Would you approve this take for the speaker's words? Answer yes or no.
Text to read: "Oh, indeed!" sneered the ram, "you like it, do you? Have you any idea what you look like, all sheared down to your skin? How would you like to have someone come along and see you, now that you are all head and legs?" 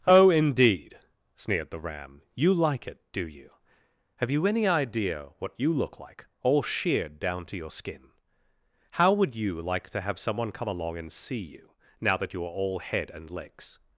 yes